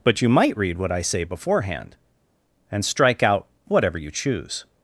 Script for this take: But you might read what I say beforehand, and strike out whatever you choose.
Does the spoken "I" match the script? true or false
true